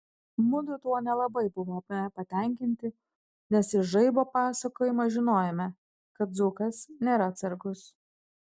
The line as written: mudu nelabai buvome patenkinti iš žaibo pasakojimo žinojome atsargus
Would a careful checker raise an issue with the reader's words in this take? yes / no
yes